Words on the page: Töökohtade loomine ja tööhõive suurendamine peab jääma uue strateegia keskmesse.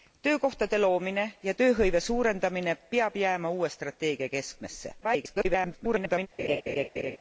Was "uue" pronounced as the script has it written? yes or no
yes